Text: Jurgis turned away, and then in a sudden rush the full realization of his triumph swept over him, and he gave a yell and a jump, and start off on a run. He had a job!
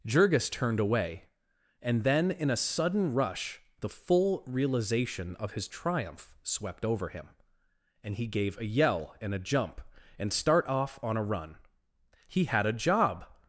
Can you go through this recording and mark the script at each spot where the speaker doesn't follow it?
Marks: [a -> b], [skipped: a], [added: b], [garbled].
Jurgis turned away, and then in a sudden rush the full realization of his triumph swept over him, and he gave a yell and a jump, and start off on a run. He had a job!